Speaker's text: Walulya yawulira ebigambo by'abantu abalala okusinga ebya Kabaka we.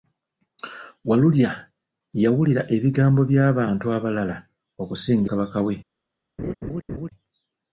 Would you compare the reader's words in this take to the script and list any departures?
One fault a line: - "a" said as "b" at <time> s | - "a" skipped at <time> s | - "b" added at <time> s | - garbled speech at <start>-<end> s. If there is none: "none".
- "ebya" skipped at 5.3 s